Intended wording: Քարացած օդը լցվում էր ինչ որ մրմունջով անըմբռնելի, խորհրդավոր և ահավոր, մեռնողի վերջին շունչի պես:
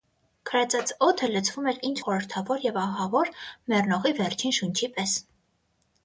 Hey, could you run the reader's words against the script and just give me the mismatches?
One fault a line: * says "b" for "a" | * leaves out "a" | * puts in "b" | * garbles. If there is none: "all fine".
* leaves out "որ մրմունջով անըմբռնելի"